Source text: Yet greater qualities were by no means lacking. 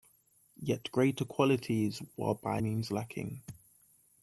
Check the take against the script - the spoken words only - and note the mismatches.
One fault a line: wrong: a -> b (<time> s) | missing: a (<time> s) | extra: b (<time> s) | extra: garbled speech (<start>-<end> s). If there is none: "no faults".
missing: no (2.6 s)